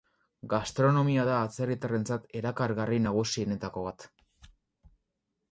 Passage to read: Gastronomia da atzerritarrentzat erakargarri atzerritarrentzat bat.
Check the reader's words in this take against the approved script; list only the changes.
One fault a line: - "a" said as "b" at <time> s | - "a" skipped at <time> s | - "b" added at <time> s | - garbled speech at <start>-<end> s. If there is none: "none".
- "atzerritarrentzat" said as "nagusienetako" at 3.1 s